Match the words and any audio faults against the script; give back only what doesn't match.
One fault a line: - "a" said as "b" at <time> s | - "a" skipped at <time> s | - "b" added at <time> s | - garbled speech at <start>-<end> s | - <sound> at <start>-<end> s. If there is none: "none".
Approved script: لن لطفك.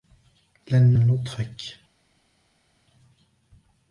none